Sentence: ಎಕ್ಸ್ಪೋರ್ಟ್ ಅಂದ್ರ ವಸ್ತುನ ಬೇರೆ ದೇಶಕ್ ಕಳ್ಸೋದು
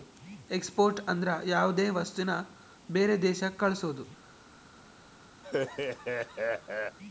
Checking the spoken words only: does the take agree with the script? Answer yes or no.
no